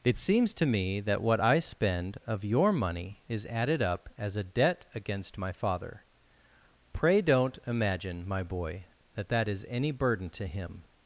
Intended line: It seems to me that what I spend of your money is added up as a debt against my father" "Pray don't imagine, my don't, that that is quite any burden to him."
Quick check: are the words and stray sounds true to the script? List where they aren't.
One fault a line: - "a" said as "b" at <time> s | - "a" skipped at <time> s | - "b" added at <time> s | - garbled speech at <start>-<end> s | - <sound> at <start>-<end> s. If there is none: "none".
- "don't" said as "boy" at 8.4 s
- "quite" skipped at 9.6 s